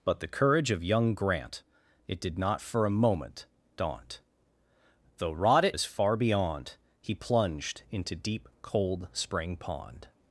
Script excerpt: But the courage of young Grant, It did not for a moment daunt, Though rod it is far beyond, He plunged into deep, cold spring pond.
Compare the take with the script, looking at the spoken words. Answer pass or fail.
pass